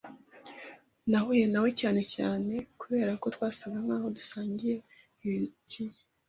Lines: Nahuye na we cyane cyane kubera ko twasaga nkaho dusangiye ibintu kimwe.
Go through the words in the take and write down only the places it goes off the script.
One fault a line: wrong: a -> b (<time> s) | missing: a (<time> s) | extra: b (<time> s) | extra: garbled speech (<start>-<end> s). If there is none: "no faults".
missing: ibintu (4.7 s)